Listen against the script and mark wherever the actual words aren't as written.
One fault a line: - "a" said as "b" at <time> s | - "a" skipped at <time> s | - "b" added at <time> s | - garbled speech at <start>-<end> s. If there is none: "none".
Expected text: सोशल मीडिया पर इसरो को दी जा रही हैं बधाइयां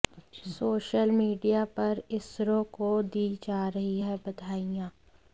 none